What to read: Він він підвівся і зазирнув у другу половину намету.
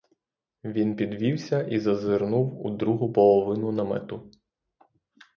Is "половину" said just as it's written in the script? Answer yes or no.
yes